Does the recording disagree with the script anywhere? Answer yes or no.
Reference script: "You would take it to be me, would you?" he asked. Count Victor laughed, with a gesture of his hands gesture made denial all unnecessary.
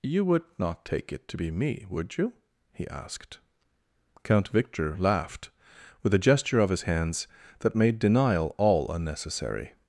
yes